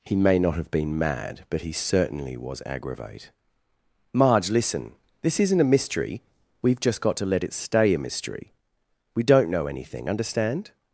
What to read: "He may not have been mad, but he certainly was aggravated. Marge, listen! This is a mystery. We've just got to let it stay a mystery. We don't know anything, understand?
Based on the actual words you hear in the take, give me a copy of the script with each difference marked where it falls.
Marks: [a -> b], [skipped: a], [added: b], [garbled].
"He may not have been mad, but he certainly was [aggravated. -> aggravate] Marge, listen! This [is -> isn't] a mystery. We've just got to let it stay a mystery. We don't know anything, understand?